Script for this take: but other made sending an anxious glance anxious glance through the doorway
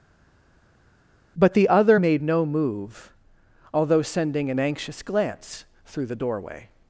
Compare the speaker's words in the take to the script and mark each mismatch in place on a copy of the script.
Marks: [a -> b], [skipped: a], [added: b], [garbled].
but [added: the] other made [added: no move although] sending an anxious glance [skipped: anxious glance] through the doorway